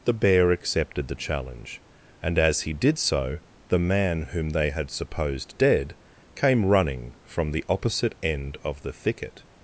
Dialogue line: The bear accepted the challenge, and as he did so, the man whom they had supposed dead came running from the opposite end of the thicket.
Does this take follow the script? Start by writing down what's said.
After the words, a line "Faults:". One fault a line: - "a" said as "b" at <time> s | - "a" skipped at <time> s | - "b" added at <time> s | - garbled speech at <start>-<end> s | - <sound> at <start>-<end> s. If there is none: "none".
The bear accepted the challenge, and as he did so, the man whom they had supposed dead came running from the opposite end of the thicket.
Faults:
none